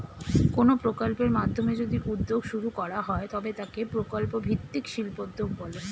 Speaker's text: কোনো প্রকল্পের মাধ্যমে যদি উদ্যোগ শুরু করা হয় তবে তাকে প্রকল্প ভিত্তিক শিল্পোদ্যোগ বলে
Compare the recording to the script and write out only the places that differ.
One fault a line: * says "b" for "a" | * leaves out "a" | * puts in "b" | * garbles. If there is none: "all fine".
all fine